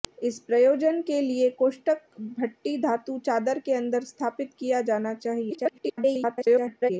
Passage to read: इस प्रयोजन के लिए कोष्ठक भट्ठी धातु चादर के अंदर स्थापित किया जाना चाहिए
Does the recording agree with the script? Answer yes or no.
no